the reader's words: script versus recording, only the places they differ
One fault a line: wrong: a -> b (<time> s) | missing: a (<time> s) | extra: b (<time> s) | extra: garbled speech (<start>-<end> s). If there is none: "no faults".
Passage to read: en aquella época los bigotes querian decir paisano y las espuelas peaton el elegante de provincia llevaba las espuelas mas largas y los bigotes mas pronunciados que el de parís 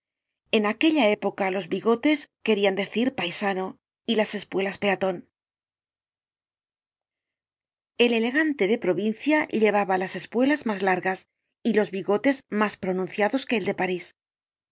no faults